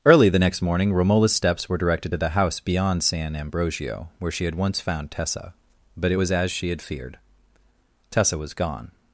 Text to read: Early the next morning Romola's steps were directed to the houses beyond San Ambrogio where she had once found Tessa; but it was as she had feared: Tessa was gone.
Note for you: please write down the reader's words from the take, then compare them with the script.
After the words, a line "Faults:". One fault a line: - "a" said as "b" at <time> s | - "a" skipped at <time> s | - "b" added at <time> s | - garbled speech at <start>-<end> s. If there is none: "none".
Early the next morning Romola's steps were directed to the house beyond San Ambrogio where she had once found Tessa; but it was as she had feared: Tessa was gone.
Faults:
- "houses" said as "house" at 2.3 s